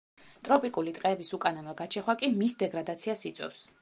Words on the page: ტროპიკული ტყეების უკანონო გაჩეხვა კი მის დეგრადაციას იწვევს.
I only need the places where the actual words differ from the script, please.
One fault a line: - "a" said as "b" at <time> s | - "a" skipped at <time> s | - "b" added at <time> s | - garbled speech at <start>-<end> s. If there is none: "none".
none